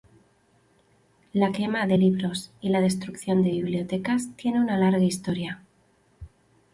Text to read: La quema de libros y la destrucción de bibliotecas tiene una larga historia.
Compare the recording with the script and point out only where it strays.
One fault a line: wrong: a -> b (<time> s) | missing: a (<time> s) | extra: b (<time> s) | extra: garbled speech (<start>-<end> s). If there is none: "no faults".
no faults